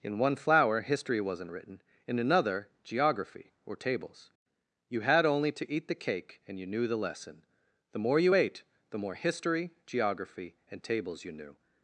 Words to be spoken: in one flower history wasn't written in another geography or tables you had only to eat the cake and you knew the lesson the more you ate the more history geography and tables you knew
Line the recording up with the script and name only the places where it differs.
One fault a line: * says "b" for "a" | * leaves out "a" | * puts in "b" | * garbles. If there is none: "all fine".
all fine